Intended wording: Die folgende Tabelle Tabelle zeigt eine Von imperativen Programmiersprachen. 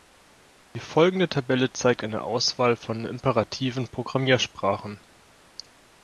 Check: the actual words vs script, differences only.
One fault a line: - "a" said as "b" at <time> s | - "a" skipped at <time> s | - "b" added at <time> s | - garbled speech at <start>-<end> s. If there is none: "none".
- "Tabelle" skipped at 1.7 s
- "Auswahl" added at 2.2 s